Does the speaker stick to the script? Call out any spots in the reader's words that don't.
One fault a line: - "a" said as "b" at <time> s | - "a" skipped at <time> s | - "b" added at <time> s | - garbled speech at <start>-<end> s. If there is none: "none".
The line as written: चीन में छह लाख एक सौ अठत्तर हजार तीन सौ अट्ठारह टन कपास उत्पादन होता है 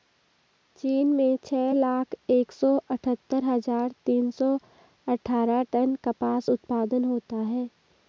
none